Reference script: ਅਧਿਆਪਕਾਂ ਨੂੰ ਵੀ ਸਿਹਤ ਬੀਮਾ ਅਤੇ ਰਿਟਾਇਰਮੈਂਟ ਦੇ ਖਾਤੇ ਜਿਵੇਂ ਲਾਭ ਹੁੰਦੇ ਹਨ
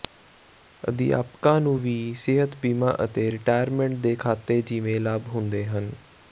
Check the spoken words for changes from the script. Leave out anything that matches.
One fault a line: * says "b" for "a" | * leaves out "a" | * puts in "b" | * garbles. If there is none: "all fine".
all fine